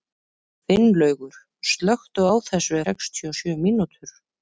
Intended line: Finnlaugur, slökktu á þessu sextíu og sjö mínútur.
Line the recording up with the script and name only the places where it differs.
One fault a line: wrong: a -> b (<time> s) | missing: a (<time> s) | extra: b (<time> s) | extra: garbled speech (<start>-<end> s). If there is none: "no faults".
no faults